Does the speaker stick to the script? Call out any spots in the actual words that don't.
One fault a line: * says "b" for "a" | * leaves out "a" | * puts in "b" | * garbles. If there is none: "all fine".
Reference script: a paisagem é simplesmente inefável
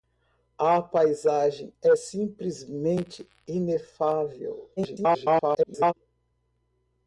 * garbles